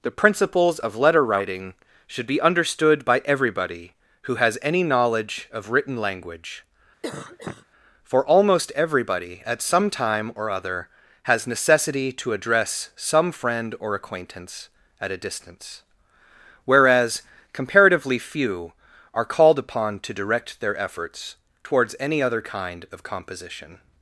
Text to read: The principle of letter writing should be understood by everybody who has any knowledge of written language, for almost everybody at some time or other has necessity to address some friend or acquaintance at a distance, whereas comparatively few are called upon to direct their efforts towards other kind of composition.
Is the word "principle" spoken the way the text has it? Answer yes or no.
no